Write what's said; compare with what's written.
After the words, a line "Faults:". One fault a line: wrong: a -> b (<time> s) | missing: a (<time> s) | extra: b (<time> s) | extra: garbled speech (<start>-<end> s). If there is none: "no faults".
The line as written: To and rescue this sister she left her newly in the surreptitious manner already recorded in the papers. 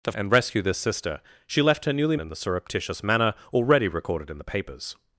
To and rescue this sister she left her newly in the surreptitious manner already recorded in the papers.
Faults:
no faults